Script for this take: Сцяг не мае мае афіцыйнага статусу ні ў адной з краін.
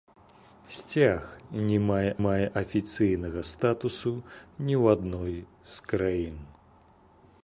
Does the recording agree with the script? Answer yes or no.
yes